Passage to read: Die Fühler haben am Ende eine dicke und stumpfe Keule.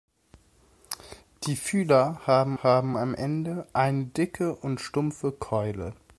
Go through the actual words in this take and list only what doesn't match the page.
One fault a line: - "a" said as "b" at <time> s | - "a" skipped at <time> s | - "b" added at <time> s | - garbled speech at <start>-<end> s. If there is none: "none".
- "haben" added at 2.6 s